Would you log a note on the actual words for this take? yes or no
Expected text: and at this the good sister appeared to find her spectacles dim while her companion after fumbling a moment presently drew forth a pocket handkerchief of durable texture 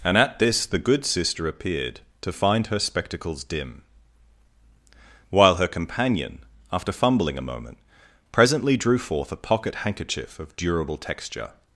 no